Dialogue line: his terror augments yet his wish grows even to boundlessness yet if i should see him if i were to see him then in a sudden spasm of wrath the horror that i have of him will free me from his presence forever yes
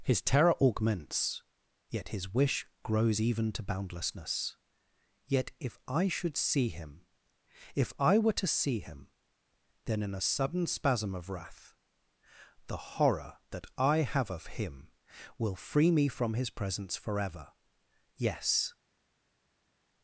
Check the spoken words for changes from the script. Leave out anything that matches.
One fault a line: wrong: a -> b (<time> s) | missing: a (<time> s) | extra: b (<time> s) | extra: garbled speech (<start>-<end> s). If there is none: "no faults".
no faults